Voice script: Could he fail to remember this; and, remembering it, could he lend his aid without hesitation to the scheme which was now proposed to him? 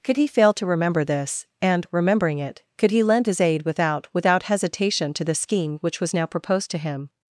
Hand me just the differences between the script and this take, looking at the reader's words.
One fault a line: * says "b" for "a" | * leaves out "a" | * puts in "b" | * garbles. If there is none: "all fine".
* puts in "without"